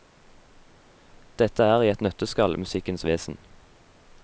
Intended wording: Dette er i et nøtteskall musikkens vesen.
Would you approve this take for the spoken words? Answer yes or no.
yes